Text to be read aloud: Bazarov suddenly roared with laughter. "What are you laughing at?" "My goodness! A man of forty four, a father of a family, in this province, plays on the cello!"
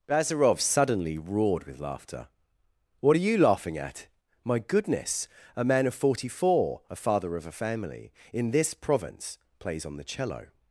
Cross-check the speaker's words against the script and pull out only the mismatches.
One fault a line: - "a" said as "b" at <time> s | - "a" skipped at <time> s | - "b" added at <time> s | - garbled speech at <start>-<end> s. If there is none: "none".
none